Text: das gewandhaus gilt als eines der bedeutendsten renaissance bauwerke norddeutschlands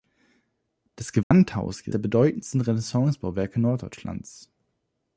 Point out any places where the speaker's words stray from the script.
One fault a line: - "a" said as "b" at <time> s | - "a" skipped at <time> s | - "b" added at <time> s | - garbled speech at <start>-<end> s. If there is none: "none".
- "als eines" skipped at 1.9 s